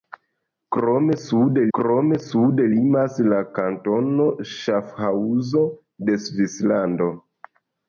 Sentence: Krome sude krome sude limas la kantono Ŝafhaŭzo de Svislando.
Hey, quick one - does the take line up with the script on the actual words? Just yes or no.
yes